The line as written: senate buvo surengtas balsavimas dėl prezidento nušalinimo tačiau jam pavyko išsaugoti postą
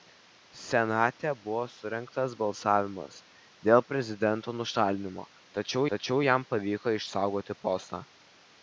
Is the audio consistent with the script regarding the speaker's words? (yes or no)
no